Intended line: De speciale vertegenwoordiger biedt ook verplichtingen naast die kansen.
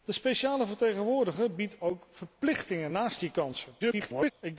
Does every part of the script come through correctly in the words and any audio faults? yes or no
no